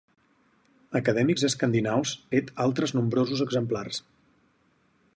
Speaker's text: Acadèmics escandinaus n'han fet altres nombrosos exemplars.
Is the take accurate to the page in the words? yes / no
no